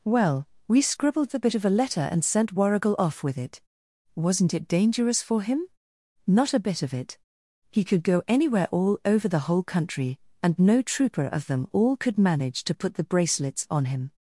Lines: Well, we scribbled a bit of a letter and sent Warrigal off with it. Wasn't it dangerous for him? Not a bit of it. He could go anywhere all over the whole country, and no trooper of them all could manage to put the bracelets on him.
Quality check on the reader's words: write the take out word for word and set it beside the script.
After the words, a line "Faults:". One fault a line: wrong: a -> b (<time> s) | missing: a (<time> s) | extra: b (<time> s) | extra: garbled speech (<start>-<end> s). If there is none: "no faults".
Well, we scribbled the bit of a letter and sent Warrigal off with it. Wasn't it dangerous for him? Not a bit of it. He could go anywhere all over the whole country, and no trooper of them all could manage to put the bracelets on him.
Faults:
wrong: a -> the (1.3 s)